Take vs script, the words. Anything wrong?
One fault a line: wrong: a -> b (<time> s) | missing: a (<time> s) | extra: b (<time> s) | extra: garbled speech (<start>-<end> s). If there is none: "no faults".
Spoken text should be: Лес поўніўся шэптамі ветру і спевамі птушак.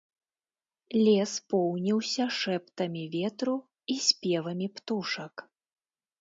no faults